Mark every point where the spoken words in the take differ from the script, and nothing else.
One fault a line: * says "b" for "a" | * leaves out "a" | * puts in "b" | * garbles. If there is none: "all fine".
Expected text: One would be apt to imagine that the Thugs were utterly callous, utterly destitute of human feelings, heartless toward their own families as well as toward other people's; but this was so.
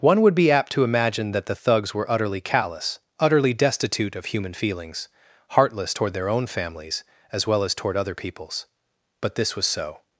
all fine